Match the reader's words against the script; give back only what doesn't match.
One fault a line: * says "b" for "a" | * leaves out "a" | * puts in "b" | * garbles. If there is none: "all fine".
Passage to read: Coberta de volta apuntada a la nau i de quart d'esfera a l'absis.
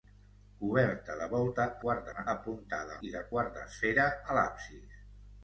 * says "quart" for "apuntada"
* says "apuntada" for "nau"